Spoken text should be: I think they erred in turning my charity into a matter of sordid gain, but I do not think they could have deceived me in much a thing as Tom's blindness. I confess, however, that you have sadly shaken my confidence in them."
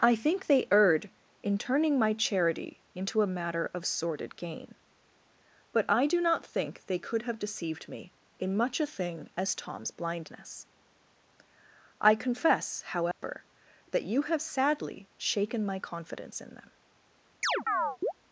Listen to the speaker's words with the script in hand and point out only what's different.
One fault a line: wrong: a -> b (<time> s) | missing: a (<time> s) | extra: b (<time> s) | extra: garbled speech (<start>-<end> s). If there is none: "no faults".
no faults